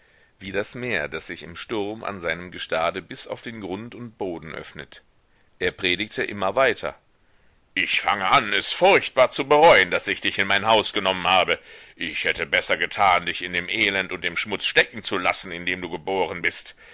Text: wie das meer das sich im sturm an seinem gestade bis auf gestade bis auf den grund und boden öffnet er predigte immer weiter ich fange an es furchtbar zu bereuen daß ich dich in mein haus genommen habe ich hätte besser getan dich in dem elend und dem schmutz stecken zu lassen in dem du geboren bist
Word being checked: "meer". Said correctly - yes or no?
yes